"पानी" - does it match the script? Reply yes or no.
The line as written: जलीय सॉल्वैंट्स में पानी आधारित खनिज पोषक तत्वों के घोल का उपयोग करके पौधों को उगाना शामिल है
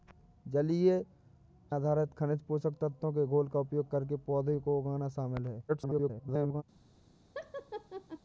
no